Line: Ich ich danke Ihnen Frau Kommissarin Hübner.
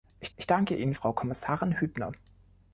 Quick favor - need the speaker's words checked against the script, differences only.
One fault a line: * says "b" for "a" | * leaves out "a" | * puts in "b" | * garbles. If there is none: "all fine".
all fine